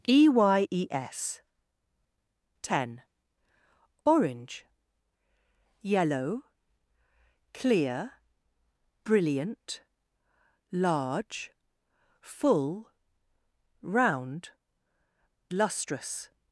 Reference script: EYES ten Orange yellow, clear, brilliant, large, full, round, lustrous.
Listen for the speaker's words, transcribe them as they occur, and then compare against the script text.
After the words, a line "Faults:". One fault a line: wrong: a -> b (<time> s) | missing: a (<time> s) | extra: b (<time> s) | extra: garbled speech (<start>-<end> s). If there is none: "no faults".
EYES ten Orange yellow, clear, brilliant, large, full, round, lustrous.
Faults:
no faults